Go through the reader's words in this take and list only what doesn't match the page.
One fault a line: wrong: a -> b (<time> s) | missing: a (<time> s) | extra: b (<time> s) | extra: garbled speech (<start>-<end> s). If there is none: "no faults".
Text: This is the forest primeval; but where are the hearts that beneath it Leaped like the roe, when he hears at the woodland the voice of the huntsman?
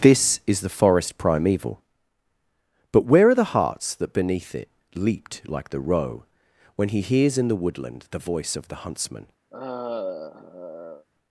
wrong: at -> in (7.4 s)